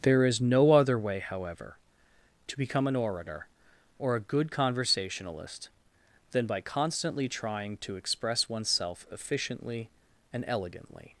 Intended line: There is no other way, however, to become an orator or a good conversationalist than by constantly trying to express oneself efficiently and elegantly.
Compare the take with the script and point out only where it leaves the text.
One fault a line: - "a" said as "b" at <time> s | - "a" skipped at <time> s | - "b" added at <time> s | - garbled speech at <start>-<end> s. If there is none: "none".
none